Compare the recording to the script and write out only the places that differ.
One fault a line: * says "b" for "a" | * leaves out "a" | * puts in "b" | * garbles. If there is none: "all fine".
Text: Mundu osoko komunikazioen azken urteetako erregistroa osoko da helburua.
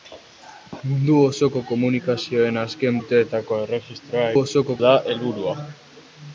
all fine